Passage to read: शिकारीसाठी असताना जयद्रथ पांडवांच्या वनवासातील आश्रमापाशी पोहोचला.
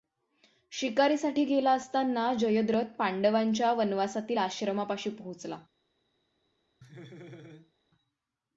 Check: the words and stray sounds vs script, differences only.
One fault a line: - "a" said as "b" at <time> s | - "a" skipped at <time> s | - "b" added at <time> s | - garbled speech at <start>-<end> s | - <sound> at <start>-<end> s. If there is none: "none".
- "गेला" added at 1.4 s
- laugh at 6.8-7.7 s